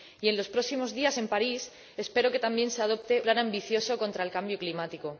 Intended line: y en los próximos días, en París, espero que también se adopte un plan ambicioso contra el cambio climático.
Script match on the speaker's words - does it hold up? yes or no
no